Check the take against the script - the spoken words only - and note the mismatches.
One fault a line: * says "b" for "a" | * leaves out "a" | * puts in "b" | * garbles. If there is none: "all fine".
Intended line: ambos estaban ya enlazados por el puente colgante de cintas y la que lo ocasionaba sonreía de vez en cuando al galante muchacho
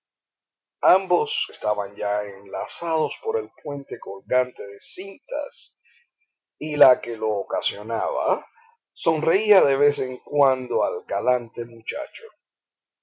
all fine